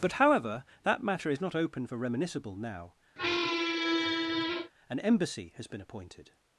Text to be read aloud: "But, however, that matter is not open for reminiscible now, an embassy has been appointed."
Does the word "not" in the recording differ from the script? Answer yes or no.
no